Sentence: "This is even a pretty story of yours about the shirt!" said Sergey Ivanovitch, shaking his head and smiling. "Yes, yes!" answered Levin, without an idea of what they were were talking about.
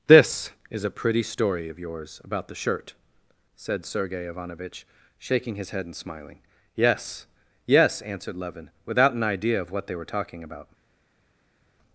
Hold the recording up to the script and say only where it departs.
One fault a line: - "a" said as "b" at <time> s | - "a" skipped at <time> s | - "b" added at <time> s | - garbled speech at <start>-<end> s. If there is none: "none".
- "even" skipped at 0.8 s
- "were" skipped at 10.1 s